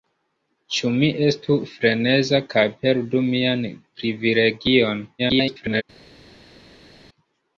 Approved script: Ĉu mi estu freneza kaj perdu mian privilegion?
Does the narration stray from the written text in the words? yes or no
yes